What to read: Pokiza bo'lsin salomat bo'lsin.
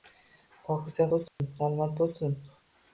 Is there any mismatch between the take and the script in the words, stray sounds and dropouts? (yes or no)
yes